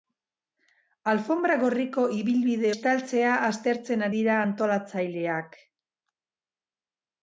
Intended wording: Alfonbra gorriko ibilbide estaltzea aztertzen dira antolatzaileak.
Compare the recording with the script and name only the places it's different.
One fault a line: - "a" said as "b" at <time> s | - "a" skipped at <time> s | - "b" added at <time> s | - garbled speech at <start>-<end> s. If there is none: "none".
none